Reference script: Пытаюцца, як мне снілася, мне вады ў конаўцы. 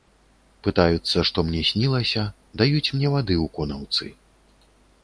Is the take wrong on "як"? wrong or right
wrong